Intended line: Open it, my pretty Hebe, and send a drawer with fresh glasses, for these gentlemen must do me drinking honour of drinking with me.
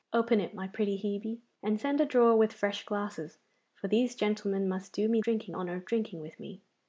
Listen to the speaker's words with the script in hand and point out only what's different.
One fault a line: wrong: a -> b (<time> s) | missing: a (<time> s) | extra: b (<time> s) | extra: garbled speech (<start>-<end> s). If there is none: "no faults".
no faults